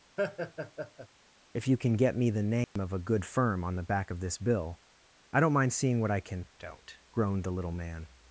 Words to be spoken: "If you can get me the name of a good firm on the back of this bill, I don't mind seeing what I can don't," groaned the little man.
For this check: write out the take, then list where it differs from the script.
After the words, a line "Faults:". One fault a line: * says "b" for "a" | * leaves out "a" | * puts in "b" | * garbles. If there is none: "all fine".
"If you can get me the name of a good firm on the back of this bill, I don't mind seeing what I can don't," groaned the little man.
Faults:
all fine